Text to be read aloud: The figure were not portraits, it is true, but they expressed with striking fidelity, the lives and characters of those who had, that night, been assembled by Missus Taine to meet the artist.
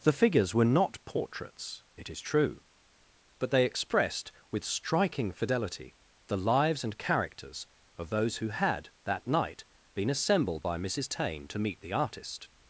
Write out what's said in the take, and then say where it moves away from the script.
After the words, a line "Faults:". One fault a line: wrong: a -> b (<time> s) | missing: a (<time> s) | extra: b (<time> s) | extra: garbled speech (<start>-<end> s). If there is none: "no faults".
The figures were not portraits, it is true, but they expressed with striking fidelity, the lives and characters of those who had, that night, been assembled by Missus Taine to meet the artist.
Faults:
wrong: figure -> figures (0.1 s)